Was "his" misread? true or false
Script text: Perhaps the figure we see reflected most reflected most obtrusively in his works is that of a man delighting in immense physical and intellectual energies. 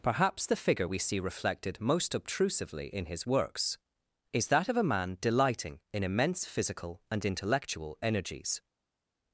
false